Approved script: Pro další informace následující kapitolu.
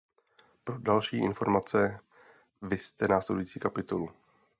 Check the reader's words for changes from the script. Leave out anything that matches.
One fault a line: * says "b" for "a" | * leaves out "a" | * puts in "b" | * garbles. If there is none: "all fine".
* puts in "vizte"